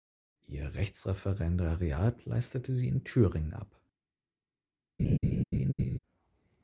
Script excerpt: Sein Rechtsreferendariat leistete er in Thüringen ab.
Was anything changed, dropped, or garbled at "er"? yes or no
yes